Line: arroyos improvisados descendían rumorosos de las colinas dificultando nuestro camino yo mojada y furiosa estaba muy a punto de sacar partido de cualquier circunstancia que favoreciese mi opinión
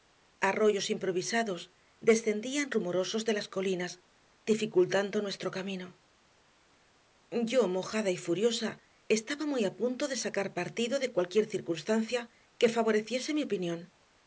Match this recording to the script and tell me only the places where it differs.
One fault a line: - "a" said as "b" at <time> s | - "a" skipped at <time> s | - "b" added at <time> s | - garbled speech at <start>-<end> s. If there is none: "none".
none